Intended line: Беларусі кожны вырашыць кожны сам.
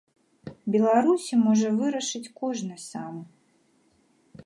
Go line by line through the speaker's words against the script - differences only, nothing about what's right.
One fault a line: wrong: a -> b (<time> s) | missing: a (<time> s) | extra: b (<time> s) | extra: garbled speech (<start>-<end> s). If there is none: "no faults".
wrong: кожны -> можа (1.4 s)